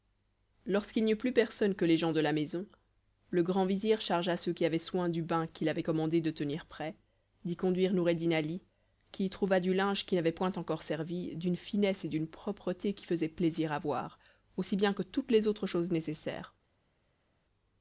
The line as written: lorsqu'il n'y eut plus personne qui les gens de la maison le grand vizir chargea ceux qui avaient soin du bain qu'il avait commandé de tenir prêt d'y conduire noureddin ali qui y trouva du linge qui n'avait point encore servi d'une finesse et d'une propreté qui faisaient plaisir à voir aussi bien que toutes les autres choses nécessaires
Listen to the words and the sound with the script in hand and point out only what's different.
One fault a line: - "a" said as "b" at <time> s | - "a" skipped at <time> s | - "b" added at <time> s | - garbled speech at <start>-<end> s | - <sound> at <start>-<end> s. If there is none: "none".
- "qui" said as "que" at 1.8 s